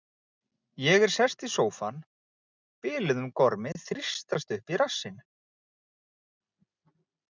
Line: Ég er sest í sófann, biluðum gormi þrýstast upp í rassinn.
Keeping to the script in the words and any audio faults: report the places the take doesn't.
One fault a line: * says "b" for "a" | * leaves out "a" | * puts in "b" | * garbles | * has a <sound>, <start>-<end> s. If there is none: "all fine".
all fine